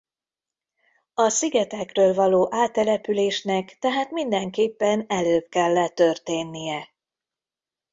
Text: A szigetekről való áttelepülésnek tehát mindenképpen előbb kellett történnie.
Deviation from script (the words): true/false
false